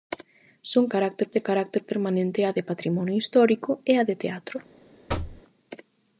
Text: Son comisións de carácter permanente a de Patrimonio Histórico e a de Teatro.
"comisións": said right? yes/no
no